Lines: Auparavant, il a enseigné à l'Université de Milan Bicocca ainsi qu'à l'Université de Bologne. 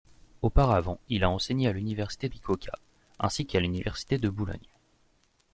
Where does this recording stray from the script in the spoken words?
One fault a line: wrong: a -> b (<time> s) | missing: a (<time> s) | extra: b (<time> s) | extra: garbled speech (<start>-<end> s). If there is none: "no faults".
missing: de Milan (2.3 s)